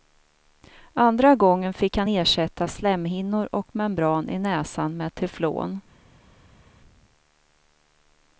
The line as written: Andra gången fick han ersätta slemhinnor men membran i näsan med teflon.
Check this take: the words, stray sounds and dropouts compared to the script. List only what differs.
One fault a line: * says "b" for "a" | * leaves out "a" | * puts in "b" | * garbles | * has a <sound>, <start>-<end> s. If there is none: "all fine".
* says "och" for "men"